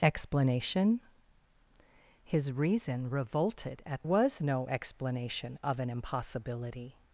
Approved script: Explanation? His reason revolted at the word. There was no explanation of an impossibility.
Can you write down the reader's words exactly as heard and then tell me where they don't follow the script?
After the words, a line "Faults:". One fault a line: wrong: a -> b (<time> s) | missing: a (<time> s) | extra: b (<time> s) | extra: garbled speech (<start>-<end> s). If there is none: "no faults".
Explanation? His reason revolted at was no explanation of an impossibility.
Faults:
missing: the word There (4.0 s)